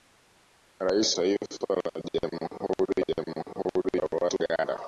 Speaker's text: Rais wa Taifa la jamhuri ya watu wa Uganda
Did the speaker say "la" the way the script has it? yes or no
yes